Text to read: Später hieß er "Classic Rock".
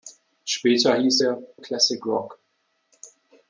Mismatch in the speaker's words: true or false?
false